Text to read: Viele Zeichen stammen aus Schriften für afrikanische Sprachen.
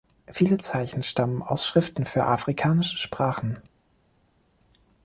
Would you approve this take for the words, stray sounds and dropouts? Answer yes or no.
yes